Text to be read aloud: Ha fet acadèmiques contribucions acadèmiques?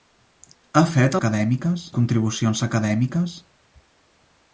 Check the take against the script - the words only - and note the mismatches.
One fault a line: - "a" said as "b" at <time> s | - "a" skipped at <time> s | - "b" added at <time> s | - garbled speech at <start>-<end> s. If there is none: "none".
none